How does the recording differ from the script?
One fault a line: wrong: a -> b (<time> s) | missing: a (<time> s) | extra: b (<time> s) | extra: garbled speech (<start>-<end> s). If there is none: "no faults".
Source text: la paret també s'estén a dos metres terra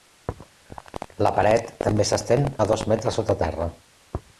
extra: sota (3.2 s)